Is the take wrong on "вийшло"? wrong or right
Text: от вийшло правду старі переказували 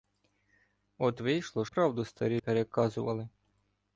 right